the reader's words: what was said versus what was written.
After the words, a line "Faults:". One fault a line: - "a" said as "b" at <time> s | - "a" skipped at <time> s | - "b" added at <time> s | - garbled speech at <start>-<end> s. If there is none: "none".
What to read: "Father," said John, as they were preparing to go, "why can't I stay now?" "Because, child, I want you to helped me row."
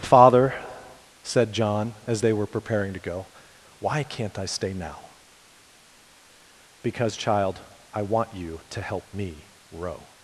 "Father," said John, as they were preparing to go, "why can't I stay now?" "Because, child, I want you to help me row."
Faults:
- "helped" said as "help" at 8.8 s